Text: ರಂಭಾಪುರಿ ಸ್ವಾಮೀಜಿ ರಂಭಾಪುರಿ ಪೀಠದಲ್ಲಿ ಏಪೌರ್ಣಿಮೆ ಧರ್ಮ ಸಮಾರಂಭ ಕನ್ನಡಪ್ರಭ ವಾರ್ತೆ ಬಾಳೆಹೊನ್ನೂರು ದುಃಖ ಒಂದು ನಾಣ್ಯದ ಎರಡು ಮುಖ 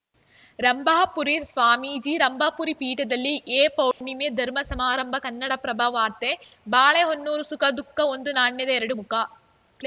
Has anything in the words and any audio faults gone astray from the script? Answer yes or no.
yes